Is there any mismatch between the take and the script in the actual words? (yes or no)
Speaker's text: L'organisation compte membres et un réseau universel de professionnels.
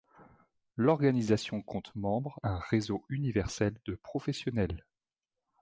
yes